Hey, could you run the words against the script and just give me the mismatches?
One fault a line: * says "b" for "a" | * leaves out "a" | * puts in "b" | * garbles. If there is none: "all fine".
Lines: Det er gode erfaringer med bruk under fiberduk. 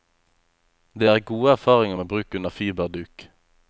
all fine